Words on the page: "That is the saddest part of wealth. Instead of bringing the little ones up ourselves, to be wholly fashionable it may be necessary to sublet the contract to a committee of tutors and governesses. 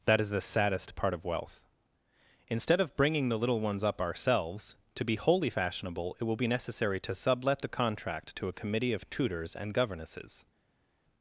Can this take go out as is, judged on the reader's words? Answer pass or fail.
fail